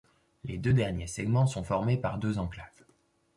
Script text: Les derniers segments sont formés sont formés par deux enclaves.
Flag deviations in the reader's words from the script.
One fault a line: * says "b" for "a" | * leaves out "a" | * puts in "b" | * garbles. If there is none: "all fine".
* puts in "deux"
* leaves out "sont formés"